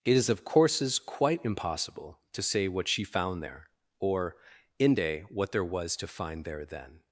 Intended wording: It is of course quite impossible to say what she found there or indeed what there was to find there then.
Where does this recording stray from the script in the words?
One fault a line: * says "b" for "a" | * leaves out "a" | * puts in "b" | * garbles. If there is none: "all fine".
* says "courses" for "course"
* says "inde" for "indeed"